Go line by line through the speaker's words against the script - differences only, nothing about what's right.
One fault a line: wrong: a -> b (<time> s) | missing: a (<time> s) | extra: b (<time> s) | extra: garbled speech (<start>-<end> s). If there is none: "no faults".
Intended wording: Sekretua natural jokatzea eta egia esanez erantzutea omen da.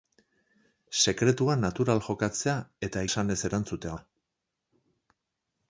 missing: egia (3.0 s)
missing: omen (3.9 s)